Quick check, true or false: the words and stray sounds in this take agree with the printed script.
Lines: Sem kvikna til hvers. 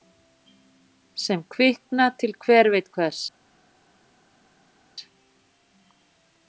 false